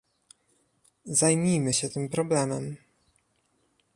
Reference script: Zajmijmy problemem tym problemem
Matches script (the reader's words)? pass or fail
fail